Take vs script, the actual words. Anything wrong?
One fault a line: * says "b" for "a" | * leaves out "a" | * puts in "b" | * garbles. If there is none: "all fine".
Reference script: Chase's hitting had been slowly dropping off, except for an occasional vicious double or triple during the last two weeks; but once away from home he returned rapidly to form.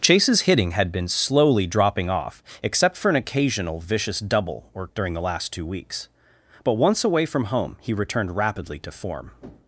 * leaves out "triple"